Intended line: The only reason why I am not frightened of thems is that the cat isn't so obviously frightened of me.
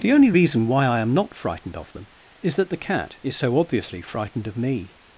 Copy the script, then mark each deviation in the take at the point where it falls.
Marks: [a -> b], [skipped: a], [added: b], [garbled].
The only reason why I am not frightened of [thems -> them] is that the cat [isn't -> is] so obviously frightened of me.